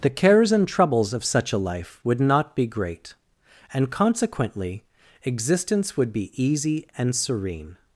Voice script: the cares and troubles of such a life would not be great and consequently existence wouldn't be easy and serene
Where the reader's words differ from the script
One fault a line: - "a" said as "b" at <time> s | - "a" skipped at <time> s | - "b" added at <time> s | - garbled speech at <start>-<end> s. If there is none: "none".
- "wouldn't" said as "would" at 6.0 s